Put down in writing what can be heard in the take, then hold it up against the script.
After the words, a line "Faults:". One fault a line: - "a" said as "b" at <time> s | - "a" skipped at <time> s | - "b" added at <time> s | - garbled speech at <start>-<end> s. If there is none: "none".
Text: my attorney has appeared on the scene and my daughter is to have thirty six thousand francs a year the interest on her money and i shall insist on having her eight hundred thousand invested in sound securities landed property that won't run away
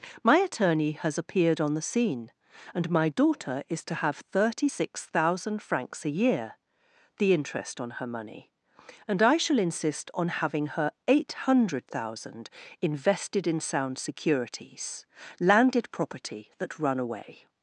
my attorney has appeared on the scene and my daughter is to have thirty six thousand francs a year the interest on her money and i shall insist on having her eight hundred thousand invested in sound securities landed property that run away
Faults:
- "won't" skipped at 16.8 s